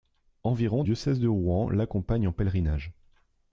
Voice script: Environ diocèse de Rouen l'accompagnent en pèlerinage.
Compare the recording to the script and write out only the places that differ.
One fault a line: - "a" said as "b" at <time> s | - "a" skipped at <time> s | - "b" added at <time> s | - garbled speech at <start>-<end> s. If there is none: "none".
none